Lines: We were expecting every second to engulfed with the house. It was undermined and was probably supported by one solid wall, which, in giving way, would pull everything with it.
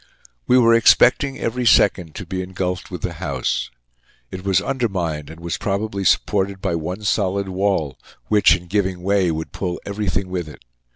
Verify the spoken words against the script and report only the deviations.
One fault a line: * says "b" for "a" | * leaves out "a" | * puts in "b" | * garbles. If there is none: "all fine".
* puts in "be"